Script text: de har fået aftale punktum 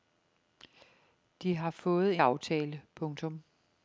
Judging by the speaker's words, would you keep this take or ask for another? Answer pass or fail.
pass